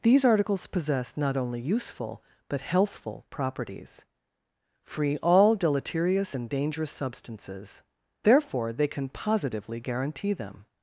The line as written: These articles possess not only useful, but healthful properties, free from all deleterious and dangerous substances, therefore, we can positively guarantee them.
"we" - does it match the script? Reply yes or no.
no